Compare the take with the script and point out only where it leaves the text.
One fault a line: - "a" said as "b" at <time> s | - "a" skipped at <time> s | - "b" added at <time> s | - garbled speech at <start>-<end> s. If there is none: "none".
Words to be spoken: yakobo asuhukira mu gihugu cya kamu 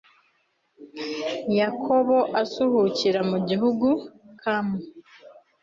- "cya" skipped at 3.9 s